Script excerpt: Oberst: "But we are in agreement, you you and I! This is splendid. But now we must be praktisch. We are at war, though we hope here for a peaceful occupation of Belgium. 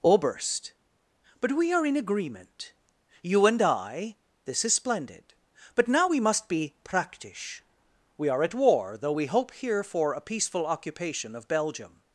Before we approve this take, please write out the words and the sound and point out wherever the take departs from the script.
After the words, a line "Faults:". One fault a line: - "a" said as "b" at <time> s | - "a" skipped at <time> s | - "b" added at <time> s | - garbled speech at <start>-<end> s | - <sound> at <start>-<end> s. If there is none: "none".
Oberst: "But we are in agreement, you and I! This is splendid. But now we must be praktisch. We are at war, though we hope here for a peaceful occupation of Belgium.
Faults:
- "you" skipped at 3.5 s